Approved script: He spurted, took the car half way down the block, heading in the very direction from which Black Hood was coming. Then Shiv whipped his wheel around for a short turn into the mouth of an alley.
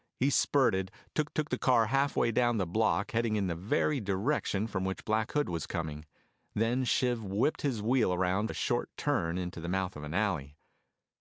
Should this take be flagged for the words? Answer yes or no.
yes